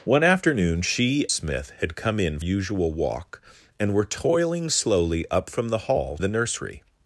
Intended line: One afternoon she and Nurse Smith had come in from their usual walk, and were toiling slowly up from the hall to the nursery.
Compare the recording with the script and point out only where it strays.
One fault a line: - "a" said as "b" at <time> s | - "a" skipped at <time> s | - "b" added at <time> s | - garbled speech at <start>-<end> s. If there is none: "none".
- "and Nurse" skipped at 1.3 s
- "from their" skipped at 2.4 s
- "to" skipped at 6.2 s